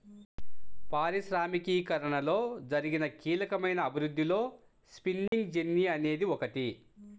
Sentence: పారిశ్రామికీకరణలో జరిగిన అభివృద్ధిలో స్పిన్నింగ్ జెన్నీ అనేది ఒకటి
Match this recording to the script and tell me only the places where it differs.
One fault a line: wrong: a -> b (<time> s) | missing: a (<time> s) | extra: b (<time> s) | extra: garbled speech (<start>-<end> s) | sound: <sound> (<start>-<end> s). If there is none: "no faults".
extra: కీలకమైన (3.2 s)
sound: dropout (5.3-5.3 s)